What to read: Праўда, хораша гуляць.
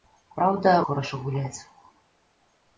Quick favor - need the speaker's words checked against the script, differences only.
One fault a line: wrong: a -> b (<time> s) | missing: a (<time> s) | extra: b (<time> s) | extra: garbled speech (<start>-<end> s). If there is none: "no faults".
no faults